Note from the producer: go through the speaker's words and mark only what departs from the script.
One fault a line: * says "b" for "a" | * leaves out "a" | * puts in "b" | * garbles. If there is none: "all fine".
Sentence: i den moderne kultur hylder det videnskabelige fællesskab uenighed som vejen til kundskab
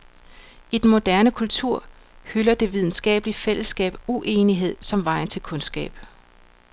all fine